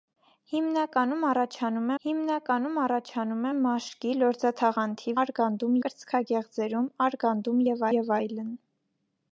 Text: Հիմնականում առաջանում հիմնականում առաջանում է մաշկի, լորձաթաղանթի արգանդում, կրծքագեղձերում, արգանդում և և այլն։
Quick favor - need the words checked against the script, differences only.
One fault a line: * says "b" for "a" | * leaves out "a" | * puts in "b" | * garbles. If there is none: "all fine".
all fine